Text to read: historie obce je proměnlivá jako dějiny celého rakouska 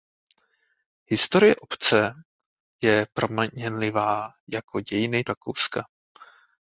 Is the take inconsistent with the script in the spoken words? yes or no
yes